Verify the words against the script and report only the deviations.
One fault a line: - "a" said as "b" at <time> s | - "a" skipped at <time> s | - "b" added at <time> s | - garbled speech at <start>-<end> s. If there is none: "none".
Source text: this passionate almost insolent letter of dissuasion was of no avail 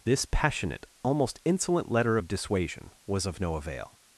none